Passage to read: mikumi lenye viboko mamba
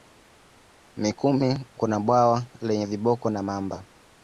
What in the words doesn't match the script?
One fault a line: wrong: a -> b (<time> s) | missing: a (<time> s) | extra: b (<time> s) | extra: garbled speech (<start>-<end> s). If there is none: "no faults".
extra: kuna bwawa (1.8 s)
extra: na (3.3 s)